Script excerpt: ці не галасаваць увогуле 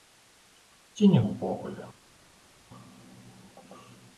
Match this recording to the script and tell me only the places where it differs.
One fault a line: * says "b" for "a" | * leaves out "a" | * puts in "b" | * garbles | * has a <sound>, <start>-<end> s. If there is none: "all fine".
* leaves out "галасаваць"